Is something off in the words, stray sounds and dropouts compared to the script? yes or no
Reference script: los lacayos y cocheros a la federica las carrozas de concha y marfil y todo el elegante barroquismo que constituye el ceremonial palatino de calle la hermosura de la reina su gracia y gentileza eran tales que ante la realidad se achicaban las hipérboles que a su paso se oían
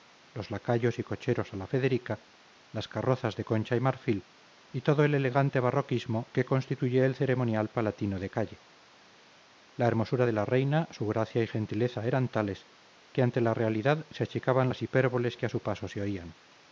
no